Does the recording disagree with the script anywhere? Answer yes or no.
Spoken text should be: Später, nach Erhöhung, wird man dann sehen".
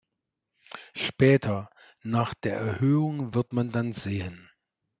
yes